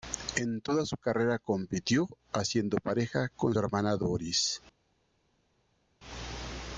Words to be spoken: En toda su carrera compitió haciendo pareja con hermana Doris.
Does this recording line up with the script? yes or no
yes